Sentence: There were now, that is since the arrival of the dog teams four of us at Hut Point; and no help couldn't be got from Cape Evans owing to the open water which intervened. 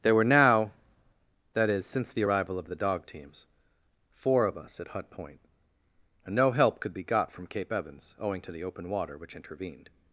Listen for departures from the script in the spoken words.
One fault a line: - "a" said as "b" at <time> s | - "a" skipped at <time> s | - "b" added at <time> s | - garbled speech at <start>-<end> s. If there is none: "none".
- "couldn't" said as "could" at 6.8 s